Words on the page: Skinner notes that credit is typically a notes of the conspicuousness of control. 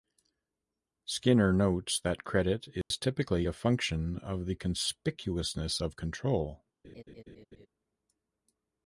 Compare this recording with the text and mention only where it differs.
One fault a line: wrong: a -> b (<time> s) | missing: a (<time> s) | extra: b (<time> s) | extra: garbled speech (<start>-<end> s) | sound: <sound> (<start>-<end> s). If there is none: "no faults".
sound: dropout (2.8-2.9 s)
wrong: notes -> function (3.5 s)
sound: laugh (6.8-7.7 s)